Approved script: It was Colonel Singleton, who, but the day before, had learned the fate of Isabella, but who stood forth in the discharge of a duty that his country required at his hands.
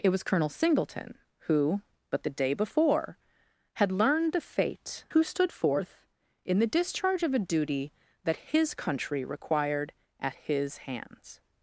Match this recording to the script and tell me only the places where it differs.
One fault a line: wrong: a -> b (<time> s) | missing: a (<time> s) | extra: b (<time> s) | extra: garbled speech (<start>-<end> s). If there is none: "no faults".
missing: of Isabella but (5.0 s)